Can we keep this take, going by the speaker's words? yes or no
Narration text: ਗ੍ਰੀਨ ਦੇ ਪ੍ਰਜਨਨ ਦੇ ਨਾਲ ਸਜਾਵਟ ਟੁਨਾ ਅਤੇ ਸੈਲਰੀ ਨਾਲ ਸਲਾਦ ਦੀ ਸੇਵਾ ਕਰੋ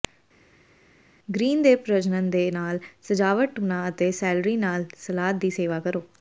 yes